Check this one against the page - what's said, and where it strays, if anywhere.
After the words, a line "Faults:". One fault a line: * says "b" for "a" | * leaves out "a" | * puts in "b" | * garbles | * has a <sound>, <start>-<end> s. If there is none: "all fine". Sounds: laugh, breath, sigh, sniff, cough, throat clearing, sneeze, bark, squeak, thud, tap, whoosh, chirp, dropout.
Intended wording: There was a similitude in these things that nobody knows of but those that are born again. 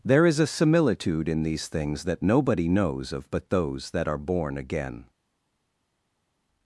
There is a similitude in these things that nobody knows of but those that are born again.
Faults:
* says "is" for "was"